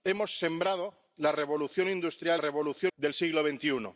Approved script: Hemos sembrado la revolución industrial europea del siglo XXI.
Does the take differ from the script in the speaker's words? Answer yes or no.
yes